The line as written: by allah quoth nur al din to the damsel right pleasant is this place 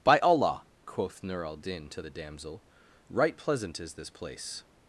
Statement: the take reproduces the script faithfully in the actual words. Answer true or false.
true